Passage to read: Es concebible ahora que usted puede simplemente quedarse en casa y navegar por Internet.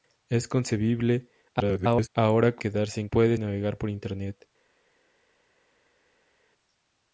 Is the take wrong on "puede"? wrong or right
wrong